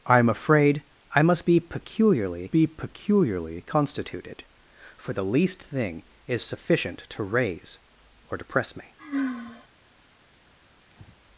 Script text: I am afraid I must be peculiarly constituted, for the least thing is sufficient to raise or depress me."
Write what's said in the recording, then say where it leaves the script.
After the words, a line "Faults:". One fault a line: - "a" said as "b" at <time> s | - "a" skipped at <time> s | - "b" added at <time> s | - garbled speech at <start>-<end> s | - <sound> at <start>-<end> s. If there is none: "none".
I am afraid I must be peculiarly be peculiarly constituted, for the least thing is sufficient to raise or depress me."
Faults:
- "be peculiarly" added at 2.5 s
- sigh at 9.0-9.7 s
- breath at 10.9-11.2 s